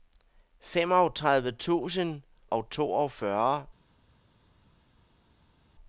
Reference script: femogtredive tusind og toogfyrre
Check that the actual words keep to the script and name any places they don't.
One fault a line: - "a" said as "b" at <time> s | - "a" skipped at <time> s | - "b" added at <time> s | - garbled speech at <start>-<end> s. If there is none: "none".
none